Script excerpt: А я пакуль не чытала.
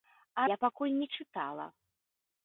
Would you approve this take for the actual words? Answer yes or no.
yes